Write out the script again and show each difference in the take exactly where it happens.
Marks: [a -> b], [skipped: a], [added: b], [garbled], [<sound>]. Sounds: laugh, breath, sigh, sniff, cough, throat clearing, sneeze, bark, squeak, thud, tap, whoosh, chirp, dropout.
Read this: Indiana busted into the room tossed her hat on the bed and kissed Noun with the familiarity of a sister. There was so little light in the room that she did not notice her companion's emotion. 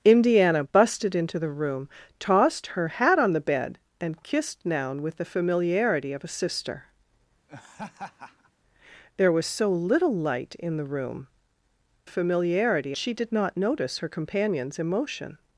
Indiana busted into the room tossed her hat on the bed and kissed Noun with the familiarity of a sister. [laugh] There was so little light in the room [that -> familiarity] she did not notice her companion's emotion.